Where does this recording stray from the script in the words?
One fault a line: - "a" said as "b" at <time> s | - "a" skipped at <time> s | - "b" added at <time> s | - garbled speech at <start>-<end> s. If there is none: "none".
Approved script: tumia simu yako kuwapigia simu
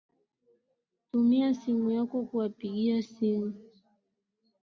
none